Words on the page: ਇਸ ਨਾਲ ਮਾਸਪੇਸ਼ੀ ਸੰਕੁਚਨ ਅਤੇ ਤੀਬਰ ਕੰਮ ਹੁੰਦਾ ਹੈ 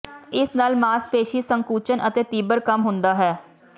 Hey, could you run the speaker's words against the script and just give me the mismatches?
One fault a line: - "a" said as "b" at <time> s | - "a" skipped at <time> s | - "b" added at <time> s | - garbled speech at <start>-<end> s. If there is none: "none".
none